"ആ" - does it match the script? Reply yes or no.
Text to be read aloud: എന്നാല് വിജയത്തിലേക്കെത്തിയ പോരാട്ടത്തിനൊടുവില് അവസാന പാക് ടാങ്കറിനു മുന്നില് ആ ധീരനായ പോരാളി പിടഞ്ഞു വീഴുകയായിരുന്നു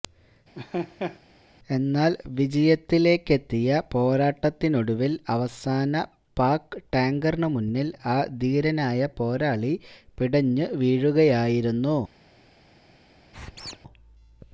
yes